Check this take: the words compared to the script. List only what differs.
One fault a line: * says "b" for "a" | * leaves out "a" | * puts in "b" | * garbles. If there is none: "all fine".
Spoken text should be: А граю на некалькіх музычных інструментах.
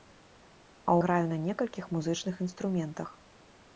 all fine